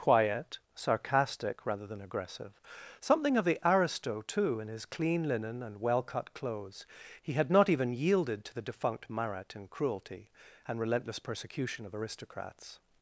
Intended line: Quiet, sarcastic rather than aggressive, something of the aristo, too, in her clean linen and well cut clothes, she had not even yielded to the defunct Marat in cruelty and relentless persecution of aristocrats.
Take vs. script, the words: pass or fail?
fail